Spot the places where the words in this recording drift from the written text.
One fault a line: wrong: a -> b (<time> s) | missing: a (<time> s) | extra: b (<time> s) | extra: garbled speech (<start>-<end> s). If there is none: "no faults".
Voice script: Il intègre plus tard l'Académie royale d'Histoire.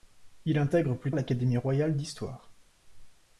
missing: tard (1.1 s)